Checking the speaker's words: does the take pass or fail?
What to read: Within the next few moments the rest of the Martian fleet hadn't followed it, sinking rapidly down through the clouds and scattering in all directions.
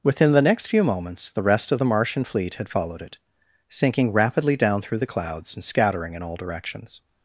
fail